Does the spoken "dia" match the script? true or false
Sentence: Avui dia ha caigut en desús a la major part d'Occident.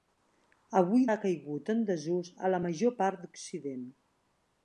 false